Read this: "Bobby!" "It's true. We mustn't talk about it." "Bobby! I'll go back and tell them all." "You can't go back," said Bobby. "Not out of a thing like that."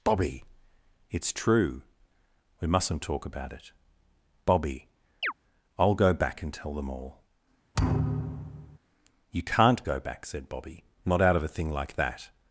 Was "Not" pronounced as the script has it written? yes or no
yes